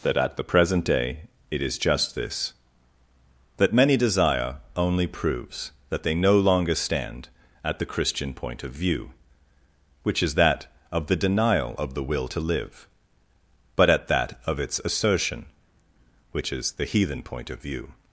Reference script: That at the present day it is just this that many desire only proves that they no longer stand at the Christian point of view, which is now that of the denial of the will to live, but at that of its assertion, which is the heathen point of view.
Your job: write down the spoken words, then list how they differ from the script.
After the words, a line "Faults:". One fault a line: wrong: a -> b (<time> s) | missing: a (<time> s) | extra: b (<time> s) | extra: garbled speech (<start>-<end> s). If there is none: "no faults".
That at the present day it is just this that many desire only proves that they no longer stand at the Christian point of view, which is that of the denial of the will to live, but at that of its assertion, which is the heathen point of view.
Faults:
missing: now (10.3 s)